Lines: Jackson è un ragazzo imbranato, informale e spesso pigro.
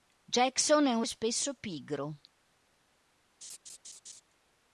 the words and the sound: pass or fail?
fail